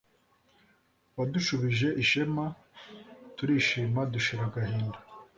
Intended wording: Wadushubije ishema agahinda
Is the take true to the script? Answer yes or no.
no